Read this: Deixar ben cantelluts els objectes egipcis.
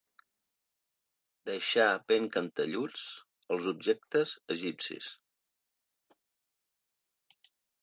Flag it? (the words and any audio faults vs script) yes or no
no